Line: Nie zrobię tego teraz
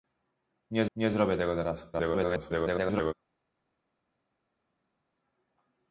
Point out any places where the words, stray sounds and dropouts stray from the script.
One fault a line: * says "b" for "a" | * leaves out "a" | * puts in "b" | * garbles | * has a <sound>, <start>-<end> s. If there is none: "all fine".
* puts in "nie"
* garbles